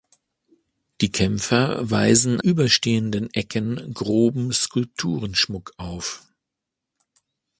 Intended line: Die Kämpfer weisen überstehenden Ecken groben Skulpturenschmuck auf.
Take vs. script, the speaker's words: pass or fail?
pass